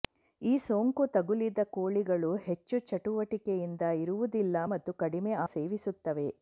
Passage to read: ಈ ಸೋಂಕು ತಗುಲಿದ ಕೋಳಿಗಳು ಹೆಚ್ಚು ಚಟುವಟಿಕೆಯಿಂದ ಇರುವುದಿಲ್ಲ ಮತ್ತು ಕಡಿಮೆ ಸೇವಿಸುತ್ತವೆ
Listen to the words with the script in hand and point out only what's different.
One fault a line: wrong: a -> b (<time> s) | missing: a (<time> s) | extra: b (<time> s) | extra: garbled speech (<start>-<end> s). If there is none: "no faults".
no faults